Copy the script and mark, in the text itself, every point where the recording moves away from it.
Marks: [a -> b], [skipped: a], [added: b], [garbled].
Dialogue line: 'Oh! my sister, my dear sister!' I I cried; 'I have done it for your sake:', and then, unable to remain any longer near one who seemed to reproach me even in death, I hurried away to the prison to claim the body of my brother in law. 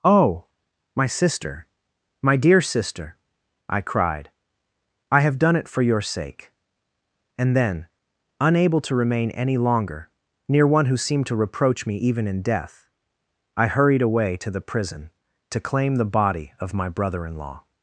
'Oh! my sister, my dear sister!' I [skipped: I] cried; 'I have done it for your sake:', and then, unable to remain any longer near one who seemed to reproach me even in death, I hurried away to the prison to claim the body of my brother in law.